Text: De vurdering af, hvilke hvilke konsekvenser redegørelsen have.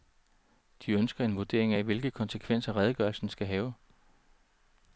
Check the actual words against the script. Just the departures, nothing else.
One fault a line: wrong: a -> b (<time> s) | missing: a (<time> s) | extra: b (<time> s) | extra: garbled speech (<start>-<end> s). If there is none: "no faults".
extra: ønsker en (0.9 s)
missing: hvilke (2.1 s)
extra: skal (3.3 s)